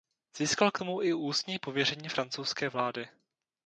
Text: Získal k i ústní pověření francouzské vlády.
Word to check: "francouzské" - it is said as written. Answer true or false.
true